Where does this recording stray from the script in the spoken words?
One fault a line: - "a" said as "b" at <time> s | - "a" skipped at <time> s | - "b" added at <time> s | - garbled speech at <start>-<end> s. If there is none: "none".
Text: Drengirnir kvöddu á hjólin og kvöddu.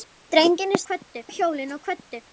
none